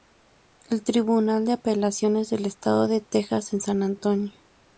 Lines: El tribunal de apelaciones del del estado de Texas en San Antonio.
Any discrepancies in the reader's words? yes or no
yes